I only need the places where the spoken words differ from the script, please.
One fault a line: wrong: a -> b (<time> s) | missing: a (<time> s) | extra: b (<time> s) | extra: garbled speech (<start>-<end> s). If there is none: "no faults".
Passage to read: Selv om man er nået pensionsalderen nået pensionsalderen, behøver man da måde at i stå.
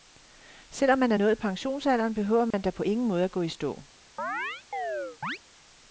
missing: nået pensionsalderen (2.1 s)
extra: på ingen (2.7 s)
extra: gå (3.3 s)